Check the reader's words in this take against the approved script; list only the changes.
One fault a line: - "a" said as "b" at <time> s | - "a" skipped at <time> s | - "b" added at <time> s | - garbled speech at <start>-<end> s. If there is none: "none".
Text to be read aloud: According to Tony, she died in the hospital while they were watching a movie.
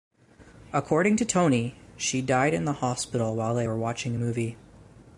none